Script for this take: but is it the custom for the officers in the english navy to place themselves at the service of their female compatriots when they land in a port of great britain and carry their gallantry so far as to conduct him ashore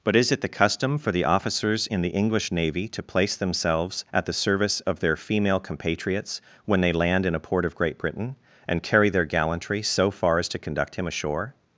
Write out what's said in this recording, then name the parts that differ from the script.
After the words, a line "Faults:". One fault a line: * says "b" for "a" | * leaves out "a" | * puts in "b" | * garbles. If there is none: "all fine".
but is it the custom for the officers in the english navy to place themselves at the service of their female compatriots when they land in a port of great britain and carry their gallantry so far as to conduct him ashore
Faults:
all fine